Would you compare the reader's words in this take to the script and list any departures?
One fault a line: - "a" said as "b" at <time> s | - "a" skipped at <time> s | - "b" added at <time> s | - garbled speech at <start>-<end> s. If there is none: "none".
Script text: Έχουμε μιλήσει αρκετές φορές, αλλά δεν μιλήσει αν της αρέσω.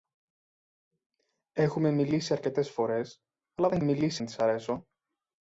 none